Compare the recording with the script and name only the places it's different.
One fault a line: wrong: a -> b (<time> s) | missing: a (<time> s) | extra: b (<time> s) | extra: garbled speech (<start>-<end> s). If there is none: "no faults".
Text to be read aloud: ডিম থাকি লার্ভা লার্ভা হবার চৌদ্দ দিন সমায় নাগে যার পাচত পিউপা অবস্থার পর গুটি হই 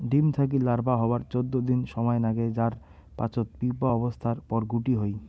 missing: লার্ভা (0.9 s)